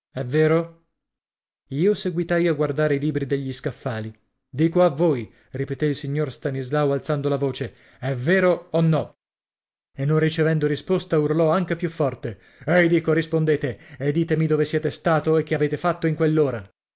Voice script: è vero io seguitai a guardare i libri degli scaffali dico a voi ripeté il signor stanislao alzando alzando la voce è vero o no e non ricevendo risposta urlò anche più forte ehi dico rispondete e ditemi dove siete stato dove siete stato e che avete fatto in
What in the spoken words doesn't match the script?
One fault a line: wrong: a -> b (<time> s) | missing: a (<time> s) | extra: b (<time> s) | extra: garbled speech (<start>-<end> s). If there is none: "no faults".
missing: alzando (7.3 s)
missing: dove siete stato (15.4 s)